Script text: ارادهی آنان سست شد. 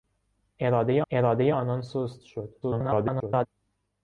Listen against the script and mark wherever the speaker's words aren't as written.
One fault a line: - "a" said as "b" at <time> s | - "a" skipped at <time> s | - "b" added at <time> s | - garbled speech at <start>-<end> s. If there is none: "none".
- "ارادهی" added at 1.1 s
- garbled speech at 2.6-3.5 s